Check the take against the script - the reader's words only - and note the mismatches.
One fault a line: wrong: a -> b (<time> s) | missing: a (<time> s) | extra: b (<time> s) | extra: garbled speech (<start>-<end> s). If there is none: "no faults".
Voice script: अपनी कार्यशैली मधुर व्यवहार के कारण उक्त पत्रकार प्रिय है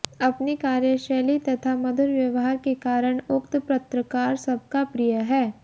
extra: तथा (1.4 s)
extra: सबका (4.5 s)